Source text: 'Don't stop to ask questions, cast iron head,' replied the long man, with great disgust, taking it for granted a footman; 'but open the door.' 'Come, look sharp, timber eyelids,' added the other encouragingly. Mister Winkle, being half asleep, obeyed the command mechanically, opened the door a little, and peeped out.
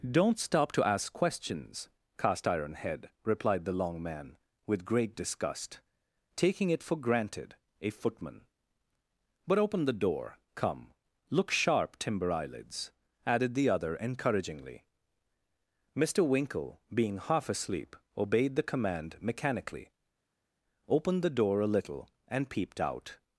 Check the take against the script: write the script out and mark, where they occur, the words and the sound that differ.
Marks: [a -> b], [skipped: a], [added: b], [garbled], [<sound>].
'Don't stop to ask questions, cast iron head,' replied the long man, with great disgust, taking it for granted a footman; 'but open the door.' 'Come, look sharp, timber eyelids,' added the other encouragingly. Mister Winkle, being half asleep, obeyed the command mechanically, opened the door a little, and peeped out.